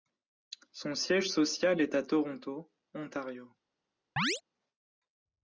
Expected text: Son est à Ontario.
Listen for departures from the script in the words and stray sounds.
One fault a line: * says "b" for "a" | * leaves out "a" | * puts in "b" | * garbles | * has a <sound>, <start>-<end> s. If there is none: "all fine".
* puts in "siège social"
* puts in "Toronto"
* has a chirp, 4.2-4.4 s